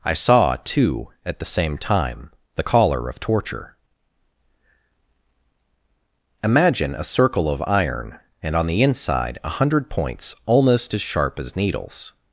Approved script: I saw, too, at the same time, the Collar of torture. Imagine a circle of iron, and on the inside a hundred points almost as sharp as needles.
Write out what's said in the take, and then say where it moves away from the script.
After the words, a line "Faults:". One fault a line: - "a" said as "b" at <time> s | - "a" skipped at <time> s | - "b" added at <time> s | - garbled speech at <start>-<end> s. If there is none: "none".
I saw, too, at the same time, the Collar of torture. Imagine a circle of iron, and on the inside a hundred points almost as sharp as needles.
Faults:
none